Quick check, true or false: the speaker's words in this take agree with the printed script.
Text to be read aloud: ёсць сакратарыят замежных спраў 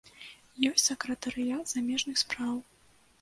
true